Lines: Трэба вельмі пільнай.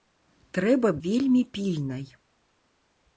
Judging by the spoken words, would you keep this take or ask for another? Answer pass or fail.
pass